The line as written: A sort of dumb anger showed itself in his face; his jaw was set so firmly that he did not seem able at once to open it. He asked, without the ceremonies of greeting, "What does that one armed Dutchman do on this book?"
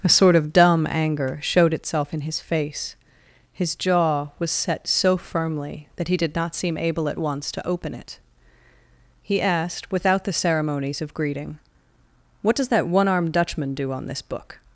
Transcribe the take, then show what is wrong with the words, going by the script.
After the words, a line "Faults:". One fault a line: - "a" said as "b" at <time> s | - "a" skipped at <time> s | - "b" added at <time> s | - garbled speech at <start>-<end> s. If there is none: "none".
A sort of dumb anger showed itself in his face; his jaw was set so firmly that he did not seem able at once to open it. He asked, without the ceremonies of greeting, "What does that one armed Dutchman do on this book?"
Faults:
none